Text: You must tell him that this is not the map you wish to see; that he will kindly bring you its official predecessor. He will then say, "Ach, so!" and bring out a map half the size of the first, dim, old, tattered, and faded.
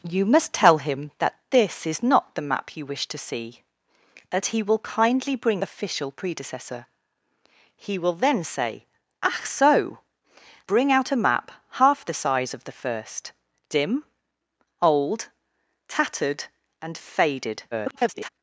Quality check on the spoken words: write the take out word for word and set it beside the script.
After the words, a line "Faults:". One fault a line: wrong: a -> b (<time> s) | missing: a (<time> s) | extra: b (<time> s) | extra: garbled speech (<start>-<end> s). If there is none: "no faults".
You must tell him that this is not the map you wish to see; that he will kindly bring official predecessor. He will then say, "Ach, so!" bring out a map half the size of the first, dim, old, tattered, and faded. [garbled]
Faults:
missing: you its (5.6 s)
missing: and (10.0 s)
extra: garbled speech (17.7-18.3 s)